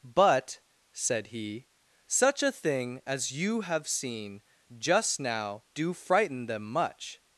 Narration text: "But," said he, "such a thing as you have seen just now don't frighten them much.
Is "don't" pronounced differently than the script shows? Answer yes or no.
yes